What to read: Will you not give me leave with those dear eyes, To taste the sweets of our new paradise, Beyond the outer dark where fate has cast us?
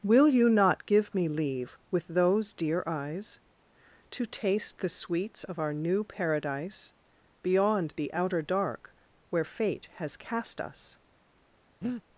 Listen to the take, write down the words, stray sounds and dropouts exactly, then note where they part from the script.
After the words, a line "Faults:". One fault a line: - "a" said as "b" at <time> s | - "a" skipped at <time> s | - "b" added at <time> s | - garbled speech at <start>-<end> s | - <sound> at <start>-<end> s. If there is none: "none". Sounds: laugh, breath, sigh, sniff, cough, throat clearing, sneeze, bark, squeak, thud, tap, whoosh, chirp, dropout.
Will you not give me leave with those dear eyes, To taste the sweets of our new paradise, Beyond the outer dark where fate has cast us?
Faults:
- breath at 11.8-12.0 s